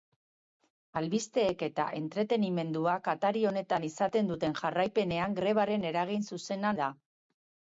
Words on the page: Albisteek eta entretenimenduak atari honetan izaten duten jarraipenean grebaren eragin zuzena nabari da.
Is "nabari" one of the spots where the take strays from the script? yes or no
yes